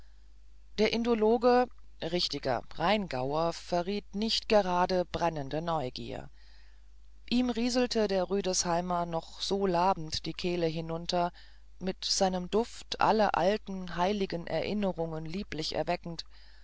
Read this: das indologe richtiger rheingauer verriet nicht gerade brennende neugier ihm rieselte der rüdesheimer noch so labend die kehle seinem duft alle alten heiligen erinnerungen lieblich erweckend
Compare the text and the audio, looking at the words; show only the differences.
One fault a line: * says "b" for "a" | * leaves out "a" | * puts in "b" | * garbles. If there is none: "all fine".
* says "der" for "das"
* puts in "hinunter mit"